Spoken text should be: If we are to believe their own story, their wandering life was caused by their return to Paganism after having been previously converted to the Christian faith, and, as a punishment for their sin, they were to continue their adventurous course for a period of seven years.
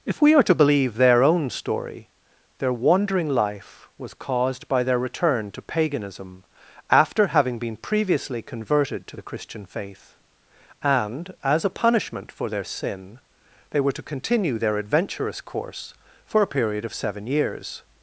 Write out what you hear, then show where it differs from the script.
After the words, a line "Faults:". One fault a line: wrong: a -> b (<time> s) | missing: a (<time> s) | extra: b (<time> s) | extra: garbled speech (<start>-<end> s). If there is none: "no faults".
If we are to believe their own story, their wandering life was caused by their return to Paganism after having been previously converted to the Christian faith, and, as a punishment for their sin, they were to continue their adventurous course for a period of seven years.
Faults:
no faults